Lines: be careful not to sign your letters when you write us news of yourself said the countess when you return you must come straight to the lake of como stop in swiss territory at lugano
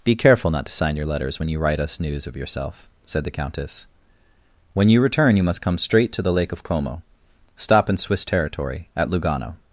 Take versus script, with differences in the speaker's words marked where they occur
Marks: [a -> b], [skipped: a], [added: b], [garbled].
be careful not to sign your letters when you write us news of yourself said the countess when you return you must come straight to the lake of como stop in swiss territory at lugano